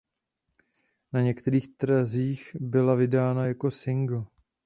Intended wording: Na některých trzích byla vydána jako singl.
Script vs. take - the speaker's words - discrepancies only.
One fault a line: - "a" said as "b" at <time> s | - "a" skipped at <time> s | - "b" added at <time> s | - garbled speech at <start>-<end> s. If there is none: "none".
none